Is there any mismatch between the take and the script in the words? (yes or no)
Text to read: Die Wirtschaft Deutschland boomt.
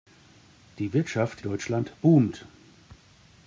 no